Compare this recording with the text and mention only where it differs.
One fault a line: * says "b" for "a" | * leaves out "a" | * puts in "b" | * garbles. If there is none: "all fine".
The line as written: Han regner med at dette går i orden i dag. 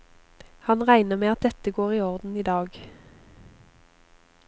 all fine